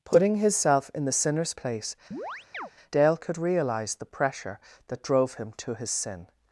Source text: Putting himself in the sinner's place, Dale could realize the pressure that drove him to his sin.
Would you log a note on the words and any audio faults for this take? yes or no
yes